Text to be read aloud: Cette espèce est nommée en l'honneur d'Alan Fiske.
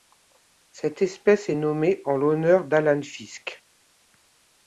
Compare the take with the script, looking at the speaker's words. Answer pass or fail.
pass